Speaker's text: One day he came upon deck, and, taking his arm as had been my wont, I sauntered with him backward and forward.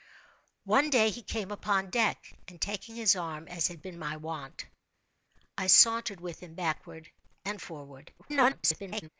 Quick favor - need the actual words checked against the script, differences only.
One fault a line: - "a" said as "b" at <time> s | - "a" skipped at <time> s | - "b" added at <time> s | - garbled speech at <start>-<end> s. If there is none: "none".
- garbled speech at 8.2-9.1 s